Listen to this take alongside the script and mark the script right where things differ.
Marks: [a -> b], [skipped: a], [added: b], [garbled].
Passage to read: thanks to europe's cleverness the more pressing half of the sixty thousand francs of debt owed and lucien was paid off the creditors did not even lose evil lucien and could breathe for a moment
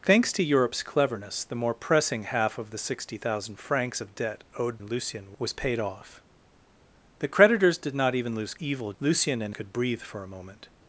thanks to europe's cleverness the more pressing half of the sixty thousand francs of debt owed and lucien was paid off the creditors did not even lose evil lucien and could breathe for a moment